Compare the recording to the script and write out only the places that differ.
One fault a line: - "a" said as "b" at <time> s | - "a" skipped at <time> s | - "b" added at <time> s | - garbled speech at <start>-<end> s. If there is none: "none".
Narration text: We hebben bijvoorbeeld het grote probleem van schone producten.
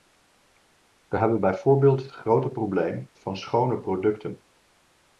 none